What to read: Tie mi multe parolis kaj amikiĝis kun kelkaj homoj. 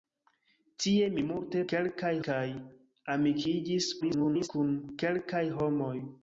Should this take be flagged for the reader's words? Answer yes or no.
yes